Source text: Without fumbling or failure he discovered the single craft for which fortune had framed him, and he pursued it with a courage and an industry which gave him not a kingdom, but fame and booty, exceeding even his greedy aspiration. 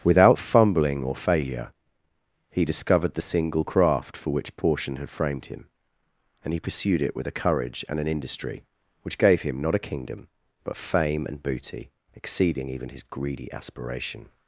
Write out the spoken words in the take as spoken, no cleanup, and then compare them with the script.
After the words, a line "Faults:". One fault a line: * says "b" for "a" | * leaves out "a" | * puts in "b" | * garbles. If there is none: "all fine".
Without fumbling or failure he discovered the single craft for which portion had framed him, and he pursued it with a courage and an industry which gave him not a kingdom, but fame and booty, exceeding even his greedy aspiration.
Faults:
* says "portion" for "fortune"